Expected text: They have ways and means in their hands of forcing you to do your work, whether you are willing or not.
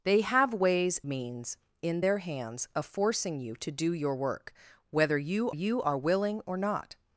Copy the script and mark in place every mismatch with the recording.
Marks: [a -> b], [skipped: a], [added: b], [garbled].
They have ways [skipped: and] means in their hands of forcing you to do your work, whether you [added: you] are willing or not.